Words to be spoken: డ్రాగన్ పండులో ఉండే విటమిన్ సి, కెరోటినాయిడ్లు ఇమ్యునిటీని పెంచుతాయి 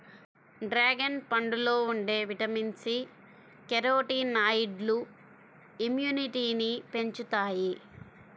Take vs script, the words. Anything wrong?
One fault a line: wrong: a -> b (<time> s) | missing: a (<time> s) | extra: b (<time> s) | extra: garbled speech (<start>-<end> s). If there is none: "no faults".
no faults